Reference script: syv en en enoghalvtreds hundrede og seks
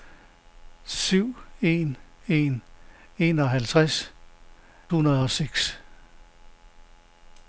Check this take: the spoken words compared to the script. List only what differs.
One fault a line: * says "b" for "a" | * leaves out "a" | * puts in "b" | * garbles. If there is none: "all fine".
all fine